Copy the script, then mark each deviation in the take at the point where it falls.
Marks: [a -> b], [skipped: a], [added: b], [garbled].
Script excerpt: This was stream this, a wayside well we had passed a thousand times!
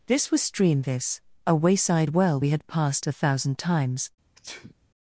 This was stream this, a wayside well we had passed a thousand times!